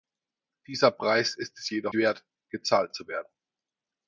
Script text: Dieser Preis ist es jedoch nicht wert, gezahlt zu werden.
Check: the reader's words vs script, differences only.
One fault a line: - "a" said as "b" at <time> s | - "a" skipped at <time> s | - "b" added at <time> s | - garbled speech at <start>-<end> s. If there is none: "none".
- "nicht" skipped at 1.9 s